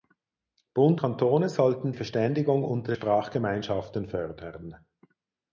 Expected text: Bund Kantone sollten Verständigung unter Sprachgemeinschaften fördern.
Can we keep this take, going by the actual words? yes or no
yes